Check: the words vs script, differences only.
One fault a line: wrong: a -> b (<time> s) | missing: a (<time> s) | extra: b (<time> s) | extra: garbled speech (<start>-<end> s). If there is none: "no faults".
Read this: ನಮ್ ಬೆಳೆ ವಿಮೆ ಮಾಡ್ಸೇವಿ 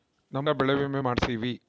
no faults